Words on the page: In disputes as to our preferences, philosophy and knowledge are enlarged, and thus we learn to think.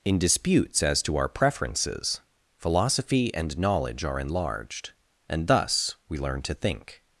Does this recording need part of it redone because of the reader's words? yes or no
no